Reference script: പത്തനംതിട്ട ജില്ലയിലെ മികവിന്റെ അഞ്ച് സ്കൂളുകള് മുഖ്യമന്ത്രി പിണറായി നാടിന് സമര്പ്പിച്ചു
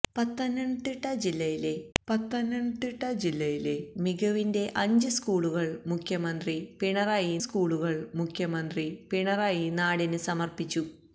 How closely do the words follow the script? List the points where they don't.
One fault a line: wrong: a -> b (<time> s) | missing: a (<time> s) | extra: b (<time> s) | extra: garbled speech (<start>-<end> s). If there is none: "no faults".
extra: പത്തനംതിട്ട ജില്ലയിലെ (2.0 s)
extra: സ്കൂളുകള് മുഖ്യമന്ത്രി പിണറായി (7.4 s)